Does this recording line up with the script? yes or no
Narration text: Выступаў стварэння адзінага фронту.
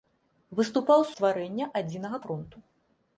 yes